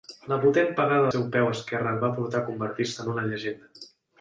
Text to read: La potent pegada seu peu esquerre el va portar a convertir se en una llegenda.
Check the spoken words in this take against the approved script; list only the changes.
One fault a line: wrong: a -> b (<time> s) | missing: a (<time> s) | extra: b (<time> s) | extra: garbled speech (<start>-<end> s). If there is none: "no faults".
no faults